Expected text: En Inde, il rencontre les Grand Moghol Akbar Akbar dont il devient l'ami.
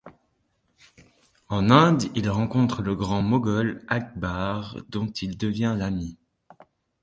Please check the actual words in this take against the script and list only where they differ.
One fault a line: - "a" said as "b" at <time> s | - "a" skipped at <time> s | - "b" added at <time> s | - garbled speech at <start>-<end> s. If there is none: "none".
- "les" said as "le" at 2.8 s
- "Akbar" skipped at 4.8 s